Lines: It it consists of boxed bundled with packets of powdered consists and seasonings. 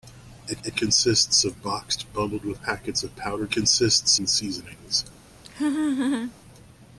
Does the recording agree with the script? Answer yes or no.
yes